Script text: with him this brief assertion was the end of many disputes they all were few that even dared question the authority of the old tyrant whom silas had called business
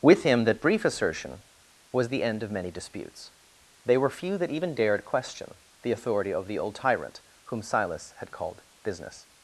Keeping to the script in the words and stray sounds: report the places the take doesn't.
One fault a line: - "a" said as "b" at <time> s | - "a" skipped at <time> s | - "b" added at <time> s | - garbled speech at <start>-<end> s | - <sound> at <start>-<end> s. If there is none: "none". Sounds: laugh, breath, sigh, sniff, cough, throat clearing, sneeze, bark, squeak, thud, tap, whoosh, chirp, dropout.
- "this" said as "that" at 0.5 s
- "all" skipped at 4.0 s